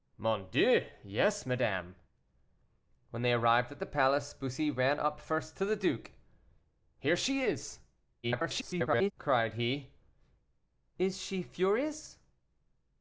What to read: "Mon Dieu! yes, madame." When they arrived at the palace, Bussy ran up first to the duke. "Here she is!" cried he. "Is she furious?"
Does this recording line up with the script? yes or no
no